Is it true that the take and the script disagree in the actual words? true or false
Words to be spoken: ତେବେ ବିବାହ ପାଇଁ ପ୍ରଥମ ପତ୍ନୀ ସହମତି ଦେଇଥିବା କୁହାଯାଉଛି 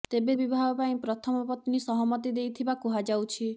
false